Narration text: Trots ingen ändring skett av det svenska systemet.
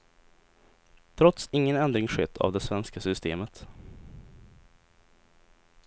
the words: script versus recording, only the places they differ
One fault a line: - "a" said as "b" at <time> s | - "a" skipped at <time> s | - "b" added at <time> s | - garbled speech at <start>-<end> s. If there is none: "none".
none